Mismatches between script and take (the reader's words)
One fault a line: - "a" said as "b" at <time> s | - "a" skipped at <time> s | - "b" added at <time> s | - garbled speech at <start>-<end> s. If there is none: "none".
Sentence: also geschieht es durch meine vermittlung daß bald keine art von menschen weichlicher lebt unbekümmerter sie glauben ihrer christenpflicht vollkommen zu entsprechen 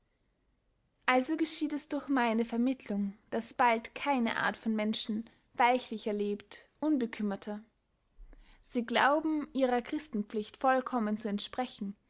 none